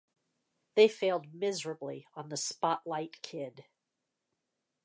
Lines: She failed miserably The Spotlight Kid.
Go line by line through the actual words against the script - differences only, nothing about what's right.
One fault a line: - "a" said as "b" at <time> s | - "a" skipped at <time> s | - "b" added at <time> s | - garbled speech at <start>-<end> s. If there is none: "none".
- "She" said as "They" at 0.8 s
- "on" added at 2.1 s